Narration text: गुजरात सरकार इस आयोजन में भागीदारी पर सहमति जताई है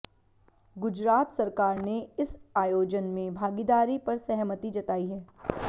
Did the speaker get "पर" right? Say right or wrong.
right